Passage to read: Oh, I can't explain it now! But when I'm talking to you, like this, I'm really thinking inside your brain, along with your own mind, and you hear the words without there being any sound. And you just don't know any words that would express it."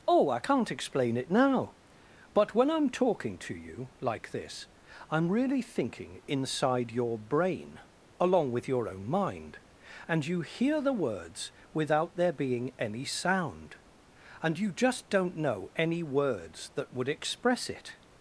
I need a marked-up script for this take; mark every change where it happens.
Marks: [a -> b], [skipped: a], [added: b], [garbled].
Oh, I can't explain it now! But when I'm talking to you, like this, I'm really thinking inside your brain, along with your own mind, and you hear the words without there being any sound. And you just don't know any words that would express it."